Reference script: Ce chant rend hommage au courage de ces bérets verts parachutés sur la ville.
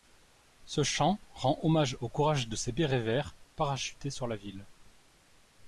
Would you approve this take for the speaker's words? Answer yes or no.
yes